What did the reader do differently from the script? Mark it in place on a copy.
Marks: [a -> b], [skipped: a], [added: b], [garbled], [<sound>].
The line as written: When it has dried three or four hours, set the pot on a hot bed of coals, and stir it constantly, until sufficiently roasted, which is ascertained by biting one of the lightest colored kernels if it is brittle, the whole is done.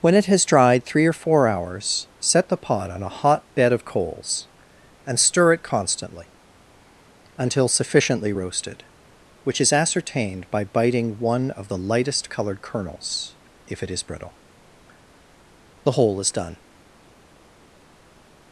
When it has dried three or four hours, set the pot on a hot bed of coals, and stir it constantly, until sufficiently roasted, which is ascertained by biting one of the lightest colored kernels if it is brittle, the whole is done.